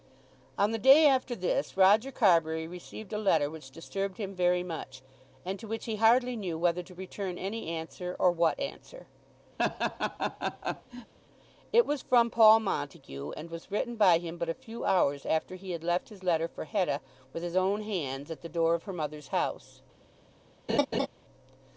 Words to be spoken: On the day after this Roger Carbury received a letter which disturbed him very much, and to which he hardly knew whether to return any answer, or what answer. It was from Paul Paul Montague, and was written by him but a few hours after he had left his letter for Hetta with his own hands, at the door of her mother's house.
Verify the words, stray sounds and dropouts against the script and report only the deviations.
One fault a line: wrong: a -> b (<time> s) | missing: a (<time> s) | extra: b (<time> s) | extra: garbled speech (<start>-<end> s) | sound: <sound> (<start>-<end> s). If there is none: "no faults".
sound: laugh (9.6-11.1 s)
missing: Paul (12.6 s)
sound: laugh (20.7-21.1 s)